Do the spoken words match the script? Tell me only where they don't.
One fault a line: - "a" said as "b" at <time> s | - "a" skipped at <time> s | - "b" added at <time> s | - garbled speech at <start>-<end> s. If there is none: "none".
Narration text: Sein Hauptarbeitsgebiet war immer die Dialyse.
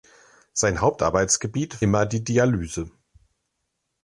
- "war" skipped at 1.9 s